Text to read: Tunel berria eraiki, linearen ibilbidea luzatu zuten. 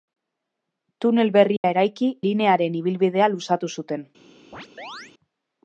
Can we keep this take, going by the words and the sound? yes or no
no